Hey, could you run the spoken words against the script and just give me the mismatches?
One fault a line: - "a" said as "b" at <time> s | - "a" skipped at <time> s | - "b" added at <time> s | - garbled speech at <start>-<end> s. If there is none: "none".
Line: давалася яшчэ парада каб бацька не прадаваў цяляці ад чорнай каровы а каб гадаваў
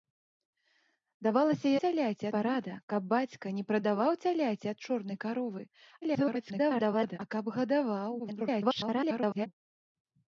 - "яшчэ" said as "цяляці" at 1.9 s
- garbled speech at 6.0-7.2 s
- garbled speech at 8.2-9.5 s